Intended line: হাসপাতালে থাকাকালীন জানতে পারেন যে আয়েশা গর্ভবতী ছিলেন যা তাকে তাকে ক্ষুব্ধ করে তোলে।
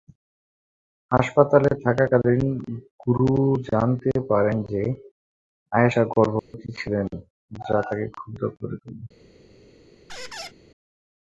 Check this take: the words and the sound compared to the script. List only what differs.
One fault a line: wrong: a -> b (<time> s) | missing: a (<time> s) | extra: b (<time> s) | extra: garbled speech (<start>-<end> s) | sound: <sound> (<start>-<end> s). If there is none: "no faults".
extra: গুরু (3.0 s)
sound: dropout (6.4-6.5 s)
missing: তাকে (8.1 s)
sound: squeak (10.1-10.5 s)